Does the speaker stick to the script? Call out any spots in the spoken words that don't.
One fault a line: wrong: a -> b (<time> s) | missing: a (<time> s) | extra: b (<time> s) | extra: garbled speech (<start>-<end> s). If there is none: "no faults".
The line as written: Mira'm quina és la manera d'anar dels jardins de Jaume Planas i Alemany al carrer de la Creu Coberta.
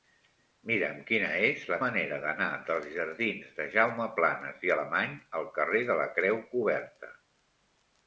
no faults